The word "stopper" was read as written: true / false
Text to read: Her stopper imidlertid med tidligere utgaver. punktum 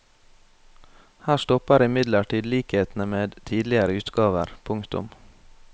true